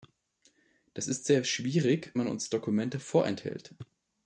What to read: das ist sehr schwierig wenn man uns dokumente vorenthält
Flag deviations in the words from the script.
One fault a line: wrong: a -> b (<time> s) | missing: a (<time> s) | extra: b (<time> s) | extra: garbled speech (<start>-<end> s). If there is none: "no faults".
missing: wenn (2.1 s)